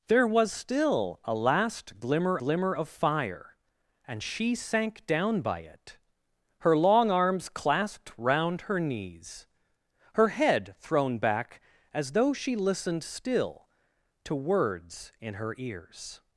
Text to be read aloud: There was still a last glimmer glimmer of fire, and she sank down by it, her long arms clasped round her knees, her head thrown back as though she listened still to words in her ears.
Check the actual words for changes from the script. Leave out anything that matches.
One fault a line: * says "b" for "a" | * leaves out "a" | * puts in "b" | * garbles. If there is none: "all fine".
all fine